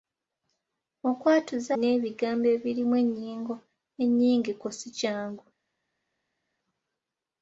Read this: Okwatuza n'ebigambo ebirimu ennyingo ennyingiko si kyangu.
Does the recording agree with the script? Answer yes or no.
yes